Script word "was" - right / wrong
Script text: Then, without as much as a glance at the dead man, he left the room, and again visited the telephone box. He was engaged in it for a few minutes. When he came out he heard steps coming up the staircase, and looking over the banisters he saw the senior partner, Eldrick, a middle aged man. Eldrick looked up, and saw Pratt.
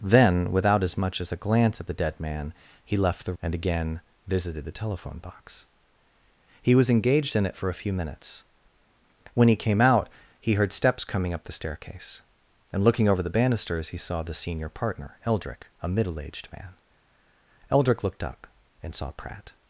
right